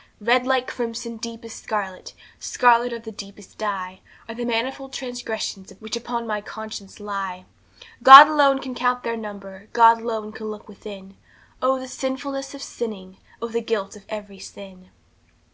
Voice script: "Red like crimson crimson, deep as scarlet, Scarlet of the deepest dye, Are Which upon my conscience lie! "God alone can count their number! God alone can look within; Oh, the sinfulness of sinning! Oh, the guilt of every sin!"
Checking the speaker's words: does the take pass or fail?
fail